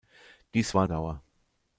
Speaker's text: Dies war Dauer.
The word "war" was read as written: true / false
true